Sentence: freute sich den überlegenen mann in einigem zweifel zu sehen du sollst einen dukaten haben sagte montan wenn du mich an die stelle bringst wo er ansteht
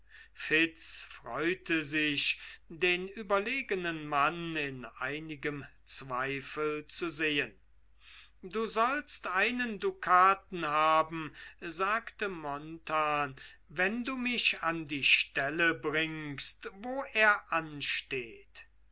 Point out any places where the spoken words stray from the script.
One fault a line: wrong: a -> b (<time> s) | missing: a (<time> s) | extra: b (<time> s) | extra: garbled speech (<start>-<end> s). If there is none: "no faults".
no faults